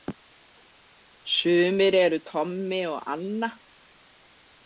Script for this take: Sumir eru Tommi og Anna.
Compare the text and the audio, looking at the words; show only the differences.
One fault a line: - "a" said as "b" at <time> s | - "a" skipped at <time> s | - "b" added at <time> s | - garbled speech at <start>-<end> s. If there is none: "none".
none